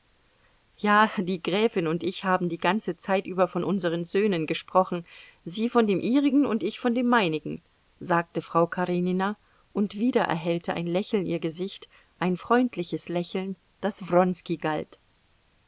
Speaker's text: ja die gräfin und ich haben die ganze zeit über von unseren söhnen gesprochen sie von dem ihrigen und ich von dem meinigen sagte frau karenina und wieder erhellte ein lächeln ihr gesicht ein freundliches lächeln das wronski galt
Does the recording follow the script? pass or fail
pass